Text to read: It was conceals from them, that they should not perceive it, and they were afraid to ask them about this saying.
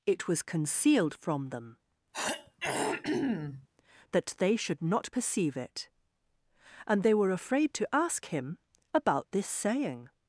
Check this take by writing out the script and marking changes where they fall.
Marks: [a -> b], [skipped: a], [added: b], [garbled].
It was [conceals -> concealed] from them, that they should not perceive it, and they were afraid to ask [them -> him] about this saying.